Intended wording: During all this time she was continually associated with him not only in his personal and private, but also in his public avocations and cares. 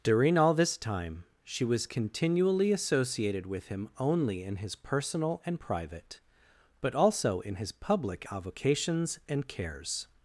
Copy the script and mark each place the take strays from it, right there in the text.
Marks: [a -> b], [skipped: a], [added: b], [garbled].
During all this time she was continually associated with him [skipped: not] only in his personal and private, but also in his public avocations and cares.